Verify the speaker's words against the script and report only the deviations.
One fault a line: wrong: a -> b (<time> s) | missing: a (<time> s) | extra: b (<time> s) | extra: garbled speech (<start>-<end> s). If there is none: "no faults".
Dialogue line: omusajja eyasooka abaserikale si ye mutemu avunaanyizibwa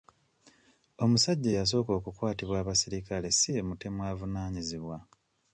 extra: okukwatibwa (2.0 s)